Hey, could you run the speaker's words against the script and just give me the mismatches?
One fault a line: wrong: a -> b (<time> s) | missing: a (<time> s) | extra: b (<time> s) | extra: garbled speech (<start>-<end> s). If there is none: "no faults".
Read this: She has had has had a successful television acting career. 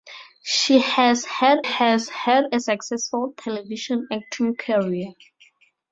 no faults